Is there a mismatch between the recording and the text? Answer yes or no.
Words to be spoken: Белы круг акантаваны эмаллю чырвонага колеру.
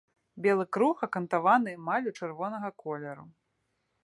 no